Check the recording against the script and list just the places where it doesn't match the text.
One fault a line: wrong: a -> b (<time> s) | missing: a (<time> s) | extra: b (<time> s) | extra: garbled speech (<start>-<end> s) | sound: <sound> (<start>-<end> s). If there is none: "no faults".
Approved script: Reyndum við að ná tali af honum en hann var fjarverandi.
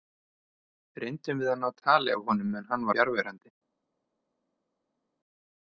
missing: var (2.9 s)